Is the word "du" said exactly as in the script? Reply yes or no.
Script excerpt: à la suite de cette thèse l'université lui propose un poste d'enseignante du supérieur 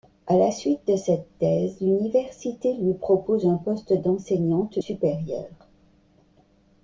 no